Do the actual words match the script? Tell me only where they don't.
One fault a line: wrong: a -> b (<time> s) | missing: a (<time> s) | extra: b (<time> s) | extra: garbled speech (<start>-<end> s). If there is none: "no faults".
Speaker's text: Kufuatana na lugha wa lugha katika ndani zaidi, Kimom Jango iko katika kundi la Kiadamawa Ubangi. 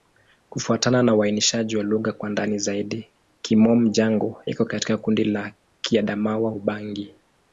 wrong: lugha -> uainishaji (1.1 s)
wrong: katika -> kwa (2.1 s)